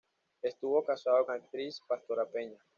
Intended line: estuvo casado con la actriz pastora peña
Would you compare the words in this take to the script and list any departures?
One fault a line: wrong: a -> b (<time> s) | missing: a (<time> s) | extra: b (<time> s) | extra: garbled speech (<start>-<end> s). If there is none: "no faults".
missing: con (1.3 s)